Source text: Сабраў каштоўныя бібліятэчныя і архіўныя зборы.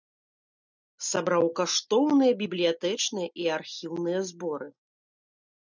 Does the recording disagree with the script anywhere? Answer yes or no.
no